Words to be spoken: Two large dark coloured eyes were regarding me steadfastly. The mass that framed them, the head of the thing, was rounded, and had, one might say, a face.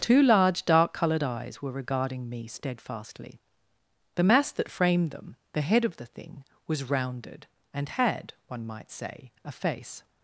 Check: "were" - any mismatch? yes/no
no